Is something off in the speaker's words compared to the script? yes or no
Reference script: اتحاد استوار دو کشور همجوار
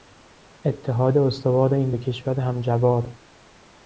yes